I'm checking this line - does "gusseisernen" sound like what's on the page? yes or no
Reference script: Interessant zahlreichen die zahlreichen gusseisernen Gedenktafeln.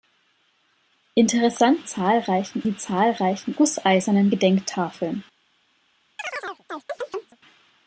yes